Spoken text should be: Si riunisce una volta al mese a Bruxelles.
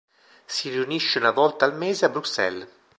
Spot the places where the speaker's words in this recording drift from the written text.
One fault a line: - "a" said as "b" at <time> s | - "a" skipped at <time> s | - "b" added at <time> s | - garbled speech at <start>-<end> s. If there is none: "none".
none